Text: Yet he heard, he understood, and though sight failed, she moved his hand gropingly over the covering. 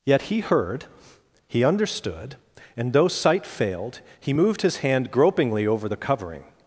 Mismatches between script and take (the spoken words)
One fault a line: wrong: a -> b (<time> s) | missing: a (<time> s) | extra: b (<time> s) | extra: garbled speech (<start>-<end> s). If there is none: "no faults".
wrong: she -> he (4.2 s)